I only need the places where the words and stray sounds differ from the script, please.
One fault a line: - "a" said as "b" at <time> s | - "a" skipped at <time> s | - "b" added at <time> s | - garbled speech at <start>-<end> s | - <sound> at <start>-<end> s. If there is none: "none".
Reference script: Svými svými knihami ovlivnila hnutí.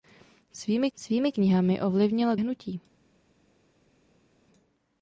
none